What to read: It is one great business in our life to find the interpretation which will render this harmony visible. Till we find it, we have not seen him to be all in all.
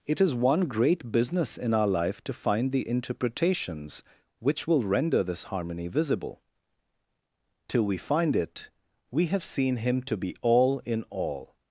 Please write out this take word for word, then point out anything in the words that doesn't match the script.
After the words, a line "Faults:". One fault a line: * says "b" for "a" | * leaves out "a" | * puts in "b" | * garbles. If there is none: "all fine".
It is one great business in our life to find the interpretations which will render this harmony visible. Till we find it, we have seen him to be all in all.
Faults:
* says "interpretations" for "interpretation"
* leaves out "not"